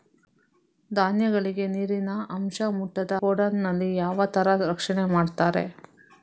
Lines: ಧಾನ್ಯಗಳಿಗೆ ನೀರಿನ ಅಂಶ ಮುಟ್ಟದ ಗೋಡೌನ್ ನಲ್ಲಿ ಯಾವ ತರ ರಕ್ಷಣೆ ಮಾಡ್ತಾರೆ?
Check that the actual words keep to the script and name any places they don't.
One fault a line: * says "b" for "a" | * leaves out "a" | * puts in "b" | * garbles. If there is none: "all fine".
all fine